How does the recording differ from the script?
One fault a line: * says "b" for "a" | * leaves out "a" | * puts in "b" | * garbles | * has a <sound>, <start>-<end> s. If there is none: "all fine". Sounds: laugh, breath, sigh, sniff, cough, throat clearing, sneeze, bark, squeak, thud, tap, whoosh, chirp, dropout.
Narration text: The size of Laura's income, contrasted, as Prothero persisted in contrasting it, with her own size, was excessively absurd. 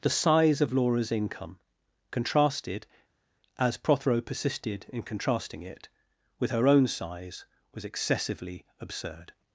all fine